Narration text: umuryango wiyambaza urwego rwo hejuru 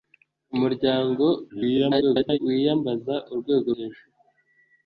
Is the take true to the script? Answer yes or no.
no